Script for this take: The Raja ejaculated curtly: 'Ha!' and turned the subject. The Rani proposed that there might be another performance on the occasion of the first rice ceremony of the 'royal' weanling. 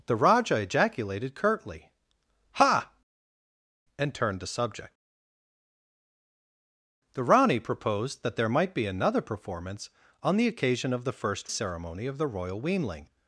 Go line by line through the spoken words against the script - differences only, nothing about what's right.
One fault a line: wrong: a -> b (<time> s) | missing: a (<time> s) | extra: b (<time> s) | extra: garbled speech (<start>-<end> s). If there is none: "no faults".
missing: rice (11.5 s)